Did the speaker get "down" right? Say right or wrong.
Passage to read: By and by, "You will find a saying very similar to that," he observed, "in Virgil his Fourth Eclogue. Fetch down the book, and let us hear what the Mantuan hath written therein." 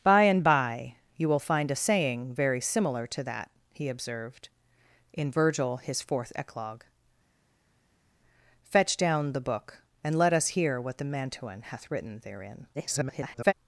right